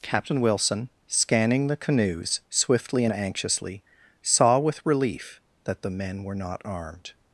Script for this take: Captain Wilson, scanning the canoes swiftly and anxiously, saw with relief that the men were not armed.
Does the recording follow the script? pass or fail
pass